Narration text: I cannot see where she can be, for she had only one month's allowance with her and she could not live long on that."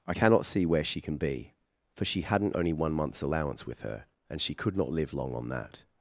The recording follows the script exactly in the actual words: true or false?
false